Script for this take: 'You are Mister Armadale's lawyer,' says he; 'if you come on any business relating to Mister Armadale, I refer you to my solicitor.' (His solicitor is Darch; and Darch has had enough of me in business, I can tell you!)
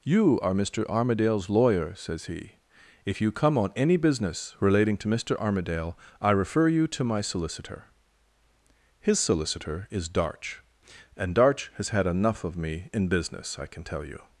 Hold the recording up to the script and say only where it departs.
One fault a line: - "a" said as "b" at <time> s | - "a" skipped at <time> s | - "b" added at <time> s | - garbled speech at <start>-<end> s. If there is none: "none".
none